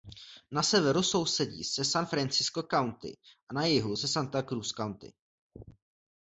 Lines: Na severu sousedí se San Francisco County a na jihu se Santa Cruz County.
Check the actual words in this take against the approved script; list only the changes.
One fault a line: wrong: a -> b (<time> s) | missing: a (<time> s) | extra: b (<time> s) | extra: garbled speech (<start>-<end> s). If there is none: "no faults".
no faults